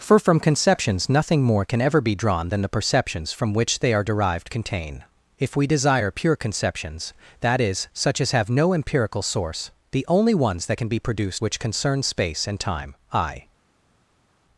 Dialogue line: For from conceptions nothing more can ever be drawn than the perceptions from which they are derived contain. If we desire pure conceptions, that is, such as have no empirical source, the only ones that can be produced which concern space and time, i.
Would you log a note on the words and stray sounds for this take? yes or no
no